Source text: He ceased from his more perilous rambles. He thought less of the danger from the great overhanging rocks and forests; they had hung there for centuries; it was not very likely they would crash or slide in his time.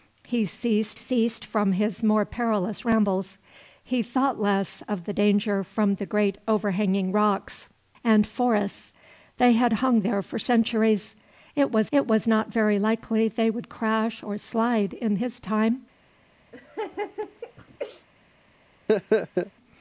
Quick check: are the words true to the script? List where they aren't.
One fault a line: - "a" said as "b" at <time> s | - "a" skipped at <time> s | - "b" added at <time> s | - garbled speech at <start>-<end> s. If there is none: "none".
- "ceased" added at 0.9 s
- "it was" added at 11.9 s